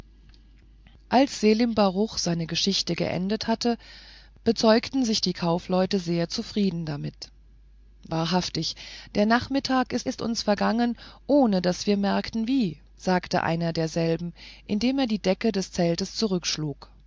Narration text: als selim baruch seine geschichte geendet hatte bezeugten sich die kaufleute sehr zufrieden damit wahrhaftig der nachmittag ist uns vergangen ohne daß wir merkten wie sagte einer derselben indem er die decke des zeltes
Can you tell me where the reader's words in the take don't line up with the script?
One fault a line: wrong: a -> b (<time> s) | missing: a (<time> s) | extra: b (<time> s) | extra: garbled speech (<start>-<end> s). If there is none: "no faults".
extra: ist (10.1 s)